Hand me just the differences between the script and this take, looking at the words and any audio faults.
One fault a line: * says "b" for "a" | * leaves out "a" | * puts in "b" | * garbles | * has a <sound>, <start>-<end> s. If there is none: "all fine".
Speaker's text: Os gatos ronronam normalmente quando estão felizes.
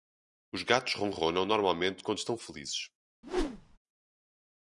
* has a whoosh, 3.2-3.8 s